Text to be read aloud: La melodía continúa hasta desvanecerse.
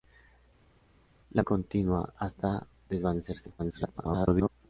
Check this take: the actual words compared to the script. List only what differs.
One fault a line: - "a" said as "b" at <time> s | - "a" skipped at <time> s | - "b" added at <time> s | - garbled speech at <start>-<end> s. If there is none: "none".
- "melodía" skipped at 1.4 s
- garbled speech at 3.6-4.5 s